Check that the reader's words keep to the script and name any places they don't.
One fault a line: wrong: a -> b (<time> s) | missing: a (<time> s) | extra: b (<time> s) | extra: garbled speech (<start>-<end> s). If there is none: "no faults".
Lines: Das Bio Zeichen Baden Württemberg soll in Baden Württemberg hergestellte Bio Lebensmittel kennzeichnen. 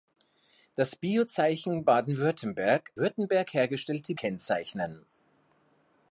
missing: soll in Baden (2.9 s)
missing: Bio Lebensmittel (4.1 s)